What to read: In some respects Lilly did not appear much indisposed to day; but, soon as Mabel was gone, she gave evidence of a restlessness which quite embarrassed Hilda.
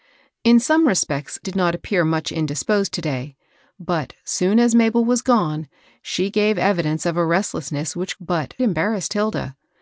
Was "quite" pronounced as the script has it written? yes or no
no